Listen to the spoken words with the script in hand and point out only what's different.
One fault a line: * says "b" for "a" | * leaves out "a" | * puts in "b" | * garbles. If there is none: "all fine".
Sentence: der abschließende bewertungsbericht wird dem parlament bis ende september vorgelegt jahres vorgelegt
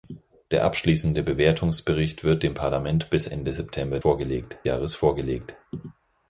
all fine